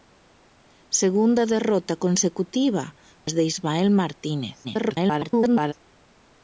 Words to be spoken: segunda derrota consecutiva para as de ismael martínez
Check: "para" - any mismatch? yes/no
yes